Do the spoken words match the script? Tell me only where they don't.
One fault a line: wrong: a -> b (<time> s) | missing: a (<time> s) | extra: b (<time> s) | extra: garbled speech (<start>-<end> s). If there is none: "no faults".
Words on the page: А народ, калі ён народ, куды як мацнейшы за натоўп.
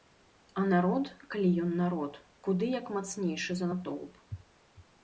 no faults